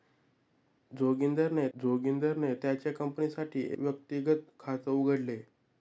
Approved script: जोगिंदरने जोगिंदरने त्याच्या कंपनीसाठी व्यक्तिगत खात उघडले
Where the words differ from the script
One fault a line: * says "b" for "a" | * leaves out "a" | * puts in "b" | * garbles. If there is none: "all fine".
all fine